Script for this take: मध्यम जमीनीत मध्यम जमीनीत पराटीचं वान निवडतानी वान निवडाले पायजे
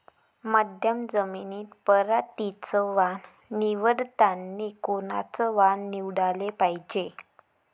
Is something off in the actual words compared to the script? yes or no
yes